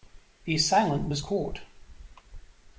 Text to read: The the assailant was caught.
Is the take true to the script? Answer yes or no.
no